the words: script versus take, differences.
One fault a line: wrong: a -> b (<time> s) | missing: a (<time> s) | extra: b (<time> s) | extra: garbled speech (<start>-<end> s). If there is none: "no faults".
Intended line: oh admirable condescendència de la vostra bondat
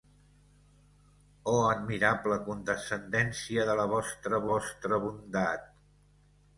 extra: vostra (4.5 s)